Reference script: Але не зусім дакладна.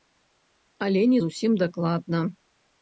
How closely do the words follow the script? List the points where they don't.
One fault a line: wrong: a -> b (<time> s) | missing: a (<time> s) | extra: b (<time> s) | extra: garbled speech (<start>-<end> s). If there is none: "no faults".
no faults